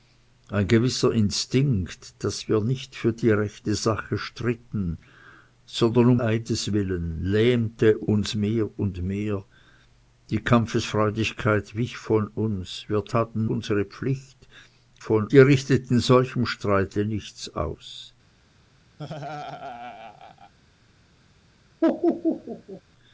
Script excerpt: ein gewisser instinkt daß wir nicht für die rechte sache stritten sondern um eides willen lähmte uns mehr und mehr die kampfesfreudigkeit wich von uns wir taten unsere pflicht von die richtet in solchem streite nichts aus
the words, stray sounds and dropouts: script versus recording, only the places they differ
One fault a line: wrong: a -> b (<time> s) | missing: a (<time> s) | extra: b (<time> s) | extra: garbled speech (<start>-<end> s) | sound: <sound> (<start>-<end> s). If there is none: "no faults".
sound: laugh (19.0-20.5 s)
sound: laugh (21.8-22.8 s)